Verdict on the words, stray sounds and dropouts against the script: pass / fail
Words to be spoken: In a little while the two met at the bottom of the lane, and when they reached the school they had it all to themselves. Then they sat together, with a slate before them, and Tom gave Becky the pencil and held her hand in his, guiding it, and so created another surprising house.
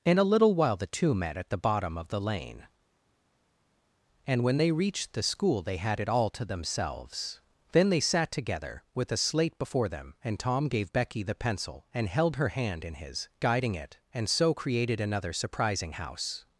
pass